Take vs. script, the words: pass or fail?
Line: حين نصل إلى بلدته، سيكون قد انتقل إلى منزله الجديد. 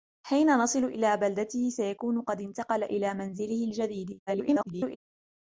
fail